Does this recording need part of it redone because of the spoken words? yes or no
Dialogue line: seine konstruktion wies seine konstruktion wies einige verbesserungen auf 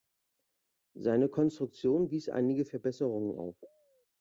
yes